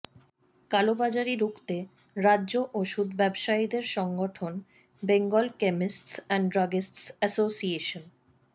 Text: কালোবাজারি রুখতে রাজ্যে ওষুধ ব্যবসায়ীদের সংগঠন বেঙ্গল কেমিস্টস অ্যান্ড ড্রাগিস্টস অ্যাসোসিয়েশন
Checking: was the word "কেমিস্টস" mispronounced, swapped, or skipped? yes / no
no